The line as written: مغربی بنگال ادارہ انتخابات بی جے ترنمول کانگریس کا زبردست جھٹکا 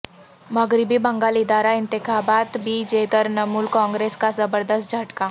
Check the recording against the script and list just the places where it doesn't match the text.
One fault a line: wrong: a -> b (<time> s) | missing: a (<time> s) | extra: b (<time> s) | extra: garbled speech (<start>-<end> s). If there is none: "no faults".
no faults